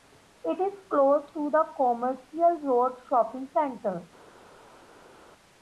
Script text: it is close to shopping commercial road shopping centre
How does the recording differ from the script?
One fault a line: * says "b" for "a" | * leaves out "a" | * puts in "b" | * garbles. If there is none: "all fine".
* says "the" for "shopping"